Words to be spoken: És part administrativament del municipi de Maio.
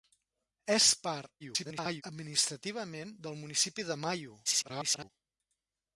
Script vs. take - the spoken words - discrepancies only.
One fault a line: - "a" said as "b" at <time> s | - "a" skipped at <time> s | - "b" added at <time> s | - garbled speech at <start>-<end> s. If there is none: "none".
- garbled speech at 1.4-2.0 s
- garbled speech at 4.4-5.1 s